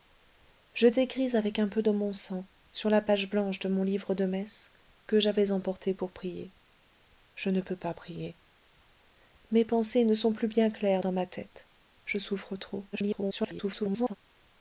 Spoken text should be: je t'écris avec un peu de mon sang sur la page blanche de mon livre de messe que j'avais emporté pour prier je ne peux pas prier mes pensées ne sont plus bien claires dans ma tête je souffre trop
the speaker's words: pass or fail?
fail